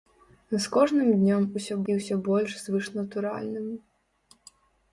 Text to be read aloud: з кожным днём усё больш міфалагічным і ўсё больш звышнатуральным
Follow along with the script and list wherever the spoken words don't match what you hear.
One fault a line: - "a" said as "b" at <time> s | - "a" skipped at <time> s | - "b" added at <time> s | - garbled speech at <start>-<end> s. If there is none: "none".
- "больш міфалагічным" skipped at 1.8 s